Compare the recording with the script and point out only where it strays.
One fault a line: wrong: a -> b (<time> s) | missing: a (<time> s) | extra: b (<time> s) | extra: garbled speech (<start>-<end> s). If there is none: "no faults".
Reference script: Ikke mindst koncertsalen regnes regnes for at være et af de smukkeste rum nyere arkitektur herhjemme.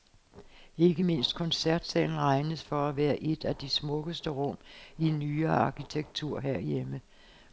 missing: regnes (2.6 s)
extra: i (5.0 s)